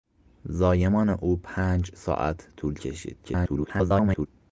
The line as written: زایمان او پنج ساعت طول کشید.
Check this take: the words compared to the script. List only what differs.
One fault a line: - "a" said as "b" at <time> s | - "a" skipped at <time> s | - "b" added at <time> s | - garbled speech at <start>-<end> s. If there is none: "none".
- garbled speech at 3.2-4.3 s